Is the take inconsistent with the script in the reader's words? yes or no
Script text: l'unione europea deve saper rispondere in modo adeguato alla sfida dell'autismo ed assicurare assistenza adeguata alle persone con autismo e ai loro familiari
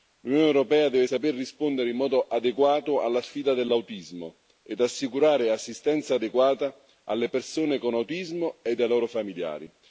no